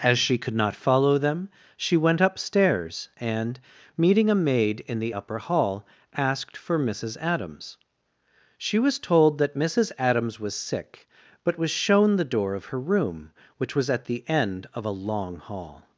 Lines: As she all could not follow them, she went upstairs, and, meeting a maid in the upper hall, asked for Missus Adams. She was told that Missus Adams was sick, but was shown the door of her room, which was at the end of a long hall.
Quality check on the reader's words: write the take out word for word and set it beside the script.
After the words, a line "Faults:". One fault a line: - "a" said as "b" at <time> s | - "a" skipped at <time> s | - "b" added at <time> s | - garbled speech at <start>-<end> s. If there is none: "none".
As she could not follow them, she went upstairs, and, meeting a maid in the upper hall, asked for Missus Adams. She was told that Missus Adams was sick, but was shown the door of her room, which was at the end of a long hall.
Faults:
- "all" skipped at 0.4 s